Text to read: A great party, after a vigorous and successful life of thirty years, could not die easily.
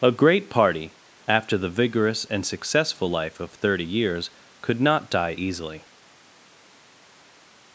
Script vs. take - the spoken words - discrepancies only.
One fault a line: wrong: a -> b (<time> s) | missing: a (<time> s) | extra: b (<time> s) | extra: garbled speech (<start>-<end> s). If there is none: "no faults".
wrong: a -> the (1.6 s)